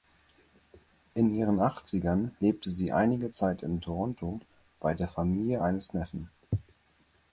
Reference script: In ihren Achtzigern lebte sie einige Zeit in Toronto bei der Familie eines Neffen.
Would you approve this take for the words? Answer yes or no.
yes